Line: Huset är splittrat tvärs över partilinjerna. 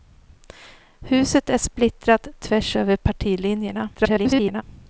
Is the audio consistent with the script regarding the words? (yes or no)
no